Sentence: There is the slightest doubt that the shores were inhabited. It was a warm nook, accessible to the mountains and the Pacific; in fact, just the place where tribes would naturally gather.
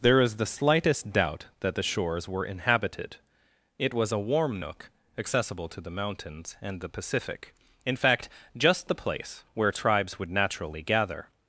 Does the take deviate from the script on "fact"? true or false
false